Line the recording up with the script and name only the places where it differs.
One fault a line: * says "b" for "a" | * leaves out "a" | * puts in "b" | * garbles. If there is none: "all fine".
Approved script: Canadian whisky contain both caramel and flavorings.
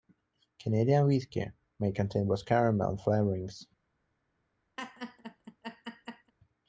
* puts in "may"